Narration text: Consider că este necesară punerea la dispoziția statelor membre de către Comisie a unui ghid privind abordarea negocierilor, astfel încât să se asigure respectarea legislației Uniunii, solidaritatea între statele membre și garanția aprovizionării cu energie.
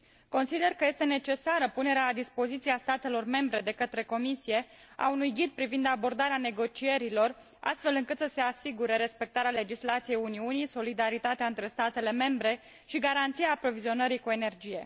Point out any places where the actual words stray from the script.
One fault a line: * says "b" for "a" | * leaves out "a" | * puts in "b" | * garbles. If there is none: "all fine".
all fine